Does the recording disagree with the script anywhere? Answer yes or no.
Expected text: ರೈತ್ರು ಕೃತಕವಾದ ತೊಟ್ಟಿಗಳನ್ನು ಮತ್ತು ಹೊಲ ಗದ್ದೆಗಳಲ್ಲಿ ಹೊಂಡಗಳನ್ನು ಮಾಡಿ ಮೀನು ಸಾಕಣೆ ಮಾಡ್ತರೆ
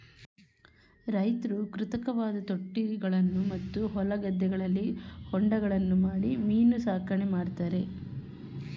no